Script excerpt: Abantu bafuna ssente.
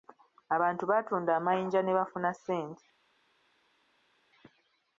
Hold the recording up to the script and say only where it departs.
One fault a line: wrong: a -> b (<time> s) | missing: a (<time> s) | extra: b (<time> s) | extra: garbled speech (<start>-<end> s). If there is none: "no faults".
extra: baatunda amayinja ne (0.9 s)